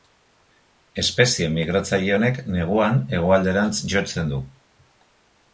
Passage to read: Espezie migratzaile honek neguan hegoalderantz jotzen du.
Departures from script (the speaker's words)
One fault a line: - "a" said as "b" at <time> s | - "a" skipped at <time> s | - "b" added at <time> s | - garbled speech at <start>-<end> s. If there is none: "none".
none